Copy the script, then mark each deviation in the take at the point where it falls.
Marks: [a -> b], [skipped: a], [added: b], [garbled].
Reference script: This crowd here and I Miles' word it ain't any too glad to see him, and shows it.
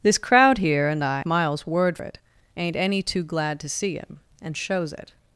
This crowd here and I Miles' word it ain't any too glad to see him, and shows it.